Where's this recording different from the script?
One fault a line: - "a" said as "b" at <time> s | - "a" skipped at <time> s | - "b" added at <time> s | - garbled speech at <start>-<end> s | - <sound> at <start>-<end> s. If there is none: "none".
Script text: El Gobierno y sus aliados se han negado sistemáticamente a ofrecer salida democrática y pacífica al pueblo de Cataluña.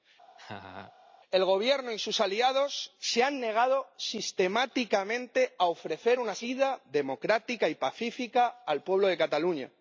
- laugh at 0.4-0.9 s
- "una" added at 6.2 s